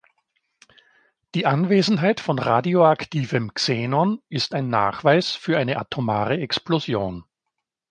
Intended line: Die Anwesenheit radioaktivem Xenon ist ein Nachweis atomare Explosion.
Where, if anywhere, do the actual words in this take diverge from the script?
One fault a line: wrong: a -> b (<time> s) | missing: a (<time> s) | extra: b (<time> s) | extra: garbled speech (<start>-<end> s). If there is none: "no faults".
extra: von (2.2 s)
extra: für eine (5.3 s)